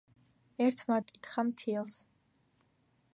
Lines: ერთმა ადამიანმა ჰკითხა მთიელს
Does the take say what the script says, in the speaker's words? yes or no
no